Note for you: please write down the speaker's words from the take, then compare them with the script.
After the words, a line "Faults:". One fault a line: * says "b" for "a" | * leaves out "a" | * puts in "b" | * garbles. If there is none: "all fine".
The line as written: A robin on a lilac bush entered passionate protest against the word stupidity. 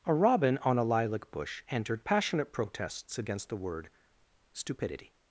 A robin on a lilac bush entered passionate protests against the word stupidity.
Faults:
* says "protests" for "protest"